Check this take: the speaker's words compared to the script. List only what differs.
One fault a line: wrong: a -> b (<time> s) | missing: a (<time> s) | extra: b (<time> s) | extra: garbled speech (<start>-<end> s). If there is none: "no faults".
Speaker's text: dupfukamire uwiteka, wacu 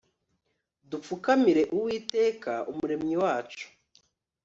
extra: umuremyi (2.7 s)